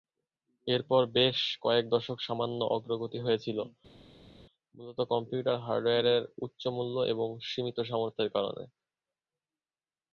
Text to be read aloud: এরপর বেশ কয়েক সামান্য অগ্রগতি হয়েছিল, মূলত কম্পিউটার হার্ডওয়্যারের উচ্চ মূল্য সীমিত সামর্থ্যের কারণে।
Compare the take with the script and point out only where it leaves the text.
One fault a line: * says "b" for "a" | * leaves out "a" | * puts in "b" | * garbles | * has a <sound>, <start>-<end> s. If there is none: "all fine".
* puts in "দশক"
* puts in "এবং"